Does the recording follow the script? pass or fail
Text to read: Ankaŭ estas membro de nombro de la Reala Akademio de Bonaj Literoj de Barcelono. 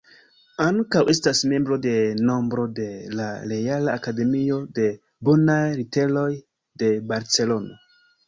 pass